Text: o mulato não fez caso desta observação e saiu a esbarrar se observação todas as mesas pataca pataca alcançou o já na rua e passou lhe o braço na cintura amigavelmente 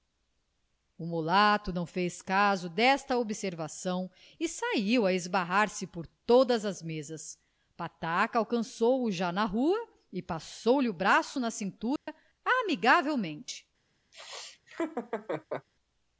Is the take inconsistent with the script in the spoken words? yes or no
yes